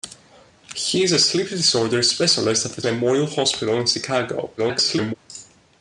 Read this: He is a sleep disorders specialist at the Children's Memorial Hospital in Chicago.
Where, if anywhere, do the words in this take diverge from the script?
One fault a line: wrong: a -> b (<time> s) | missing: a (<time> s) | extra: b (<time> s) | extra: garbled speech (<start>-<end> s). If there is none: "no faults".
missing: Children's (2.8 s)
extra: garbled speech (4.6-5.1 s)